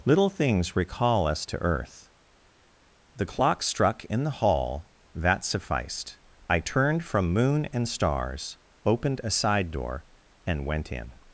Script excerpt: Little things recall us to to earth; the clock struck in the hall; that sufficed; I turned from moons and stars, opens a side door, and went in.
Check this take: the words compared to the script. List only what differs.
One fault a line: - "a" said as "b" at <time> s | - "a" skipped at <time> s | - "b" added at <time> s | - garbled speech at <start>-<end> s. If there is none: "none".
- "to" skipped at 1.6 s
- "moons" said as "moon" at 7.3 s
- "opens" said as "opened" at 8.9 s